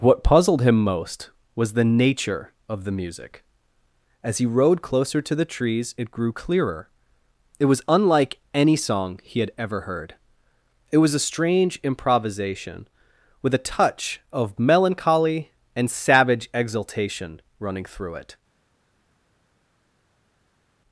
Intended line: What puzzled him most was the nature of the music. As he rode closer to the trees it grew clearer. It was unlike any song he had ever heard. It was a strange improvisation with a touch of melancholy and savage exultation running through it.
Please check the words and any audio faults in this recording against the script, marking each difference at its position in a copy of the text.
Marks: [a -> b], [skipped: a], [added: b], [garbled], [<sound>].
What puzzled him most was the nature of the music. As he rode closer to the trees it grew clearer. It was unlike any song he had ever heard. It was a strange improvisation with a touch of melancholy and savage exultation running through it.